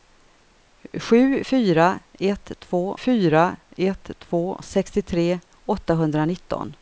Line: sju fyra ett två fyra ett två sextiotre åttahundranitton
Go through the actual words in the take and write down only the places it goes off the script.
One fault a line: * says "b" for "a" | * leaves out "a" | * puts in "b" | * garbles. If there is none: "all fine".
all fine